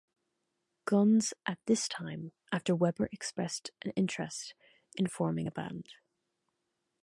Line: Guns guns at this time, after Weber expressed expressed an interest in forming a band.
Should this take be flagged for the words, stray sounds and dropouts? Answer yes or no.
yes